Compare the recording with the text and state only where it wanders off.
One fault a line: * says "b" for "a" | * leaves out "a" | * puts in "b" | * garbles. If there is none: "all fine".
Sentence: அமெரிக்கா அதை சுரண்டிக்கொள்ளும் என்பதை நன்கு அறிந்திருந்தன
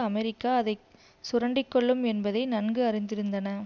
all fine